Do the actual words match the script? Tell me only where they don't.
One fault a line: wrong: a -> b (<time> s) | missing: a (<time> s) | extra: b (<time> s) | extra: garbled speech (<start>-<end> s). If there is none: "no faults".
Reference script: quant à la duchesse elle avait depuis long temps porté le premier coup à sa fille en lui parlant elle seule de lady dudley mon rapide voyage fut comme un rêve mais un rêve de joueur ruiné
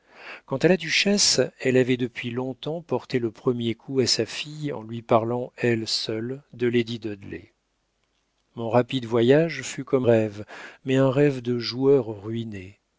missing: un (10.1 s)